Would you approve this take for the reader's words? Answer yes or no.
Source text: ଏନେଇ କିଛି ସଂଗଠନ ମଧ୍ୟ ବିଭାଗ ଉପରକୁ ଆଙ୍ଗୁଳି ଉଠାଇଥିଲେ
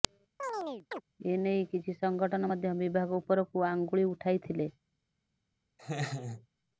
yes